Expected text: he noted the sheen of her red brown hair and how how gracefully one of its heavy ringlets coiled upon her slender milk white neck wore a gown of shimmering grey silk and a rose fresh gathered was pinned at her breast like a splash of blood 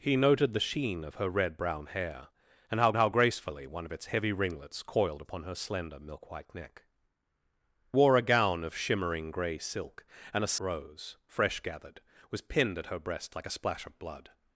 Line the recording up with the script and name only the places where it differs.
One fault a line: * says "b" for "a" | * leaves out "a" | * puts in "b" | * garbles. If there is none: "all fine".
all fine